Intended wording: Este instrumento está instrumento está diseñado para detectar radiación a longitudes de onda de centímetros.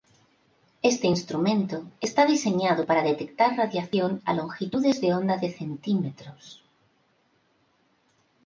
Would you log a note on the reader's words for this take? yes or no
yes